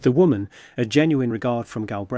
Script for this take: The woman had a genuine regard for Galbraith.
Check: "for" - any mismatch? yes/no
yes